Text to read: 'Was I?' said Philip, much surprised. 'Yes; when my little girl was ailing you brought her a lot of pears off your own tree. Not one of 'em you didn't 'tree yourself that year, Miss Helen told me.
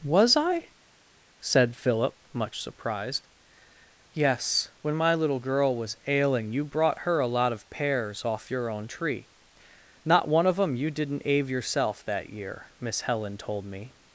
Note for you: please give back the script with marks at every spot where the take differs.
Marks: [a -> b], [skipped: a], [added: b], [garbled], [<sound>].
'Was I?' said Philip, much surprised. 'Yes; when my little girl was ailing you brought her a lot of pears off your own tree. Not one of 'em you didn't ['tree -> ave] yourself that year, Miss Helen told me.